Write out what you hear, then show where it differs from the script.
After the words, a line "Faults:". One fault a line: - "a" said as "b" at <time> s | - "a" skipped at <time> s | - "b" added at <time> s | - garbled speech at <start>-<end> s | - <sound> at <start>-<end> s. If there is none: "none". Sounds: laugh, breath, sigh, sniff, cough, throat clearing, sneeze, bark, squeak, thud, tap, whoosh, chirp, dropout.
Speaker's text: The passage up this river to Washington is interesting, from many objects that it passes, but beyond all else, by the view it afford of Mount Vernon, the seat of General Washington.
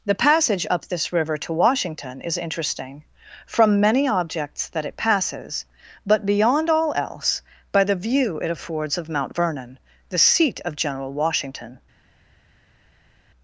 The passage up this river to Washington is interesting, from many objects that it passes, but beyond all else, by the view it affords of Mount Vernon, the seat of General Washington.
Faults:
- "afford" said as "affords" at 8.5 s